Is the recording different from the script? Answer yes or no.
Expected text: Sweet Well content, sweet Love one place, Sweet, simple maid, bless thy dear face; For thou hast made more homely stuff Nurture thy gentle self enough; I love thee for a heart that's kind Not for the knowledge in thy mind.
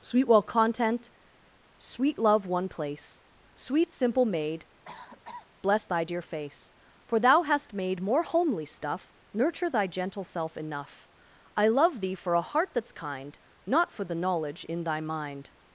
no